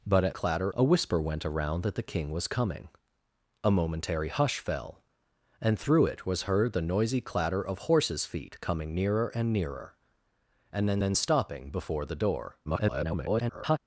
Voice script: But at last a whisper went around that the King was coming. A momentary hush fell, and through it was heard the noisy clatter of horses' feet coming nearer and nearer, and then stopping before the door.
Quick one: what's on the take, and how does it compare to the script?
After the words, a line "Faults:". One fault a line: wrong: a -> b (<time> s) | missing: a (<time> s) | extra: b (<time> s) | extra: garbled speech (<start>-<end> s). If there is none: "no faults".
But at clatter a whisper went around that the King was coming. A momentary hush fell, and through it was heard the noisy clatter of horses' feet coming nearer and nearer, and then then stopping before the door. [garbled]
Faults:
wrong: last -> clatter (0.3 s)
extra: then (11.0 s)
extra: garbled speech (12.6-13.8 s)